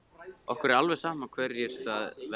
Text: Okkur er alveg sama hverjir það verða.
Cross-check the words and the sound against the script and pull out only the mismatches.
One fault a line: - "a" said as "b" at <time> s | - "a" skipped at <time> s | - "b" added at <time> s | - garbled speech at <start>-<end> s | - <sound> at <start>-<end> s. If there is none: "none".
none